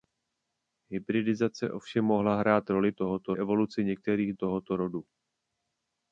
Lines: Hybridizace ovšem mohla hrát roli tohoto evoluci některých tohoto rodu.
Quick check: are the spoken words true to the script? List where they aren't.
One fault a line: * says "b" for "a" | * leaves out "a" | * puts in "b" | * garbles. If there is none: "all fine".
all fine